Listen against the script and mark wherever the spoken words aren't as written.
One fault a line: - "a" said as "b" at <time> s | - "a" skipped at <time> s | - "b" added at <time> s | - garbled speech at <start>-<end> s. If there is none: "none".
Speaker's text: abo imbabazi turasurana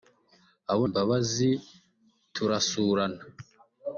none